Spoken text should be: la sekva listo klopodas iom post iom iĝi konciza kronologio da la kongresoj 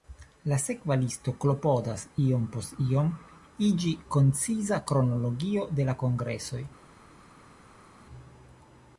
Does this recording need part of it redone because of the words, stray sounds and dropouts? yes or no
yes